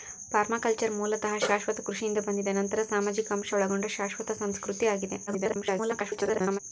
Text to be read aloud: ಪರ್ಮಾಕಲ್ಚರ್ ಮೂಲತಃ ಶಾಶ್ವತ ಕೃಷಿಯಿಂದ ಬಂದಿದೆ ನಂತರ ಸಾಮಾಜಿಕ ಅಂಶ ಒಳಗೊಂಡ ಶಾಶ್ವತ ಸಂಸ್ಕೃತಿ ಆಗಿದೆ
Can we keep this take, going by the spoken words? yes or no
no